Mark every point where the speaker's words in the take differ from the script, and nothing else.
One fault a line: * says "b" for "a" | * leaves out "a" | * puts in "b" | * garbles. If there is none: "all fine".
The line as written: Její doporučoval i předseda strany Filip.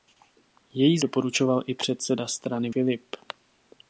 all fine